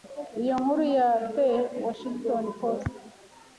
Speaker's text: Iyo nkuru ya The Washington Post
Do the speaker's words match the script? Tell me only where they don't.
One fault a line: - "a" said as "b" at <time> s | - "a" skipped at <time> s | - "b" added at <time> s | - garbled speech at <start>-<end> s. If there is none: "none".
none